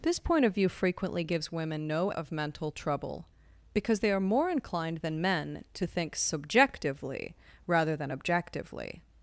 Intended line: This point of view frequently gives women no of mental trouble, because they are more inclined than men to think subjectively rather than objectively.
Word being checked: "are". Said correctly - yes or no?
yes